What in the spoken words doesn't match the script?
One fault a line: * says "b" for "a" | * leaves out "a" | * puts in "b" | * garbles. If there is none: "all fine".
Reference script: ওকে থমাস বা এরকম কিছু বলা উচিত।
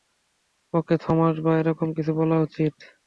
all fine